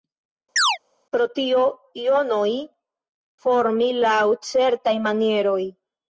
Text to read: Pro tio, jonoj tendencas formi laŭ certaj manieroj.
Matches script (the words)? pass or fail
fail